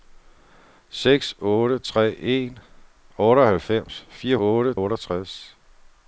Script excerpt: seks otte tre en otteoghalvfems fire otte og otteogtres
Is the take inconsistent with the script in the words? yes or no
no